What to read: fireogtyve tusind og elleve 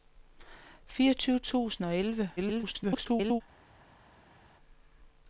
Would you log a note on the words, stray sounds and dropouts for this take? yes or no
yes